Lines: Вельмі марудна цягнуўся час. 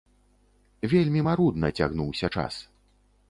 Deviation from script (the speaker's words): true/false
false